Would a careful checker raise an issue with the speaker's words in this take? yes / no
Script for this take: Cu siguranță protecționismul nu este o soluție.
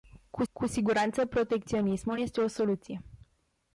yes